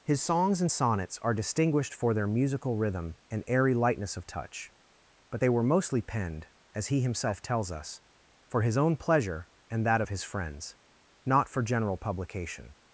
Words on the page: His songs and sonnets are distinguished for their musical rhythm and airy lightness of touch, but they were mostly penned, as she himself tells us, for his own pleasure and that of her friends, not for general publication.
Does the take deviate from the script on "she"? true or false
true